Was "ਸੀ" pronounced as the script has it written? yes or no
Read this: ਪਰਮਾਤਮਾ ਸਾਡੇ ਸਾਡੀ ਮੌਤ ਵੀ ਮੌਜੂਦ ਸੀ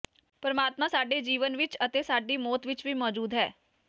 no